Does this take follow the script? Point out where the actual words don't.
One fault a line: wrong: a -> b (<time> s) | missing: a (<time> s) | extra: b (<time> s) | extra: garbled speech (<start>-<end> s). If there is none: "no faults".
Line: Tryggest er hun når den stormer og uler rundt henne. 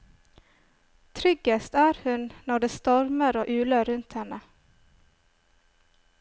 wrong: den -> det (2.6 s)